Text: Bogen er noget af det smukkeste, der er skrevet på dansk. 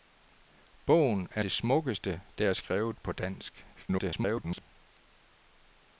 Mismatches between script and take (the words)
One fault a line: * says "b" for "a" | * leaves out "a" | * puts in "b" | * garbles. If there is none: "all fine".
* leaves out "noget af"
* garbles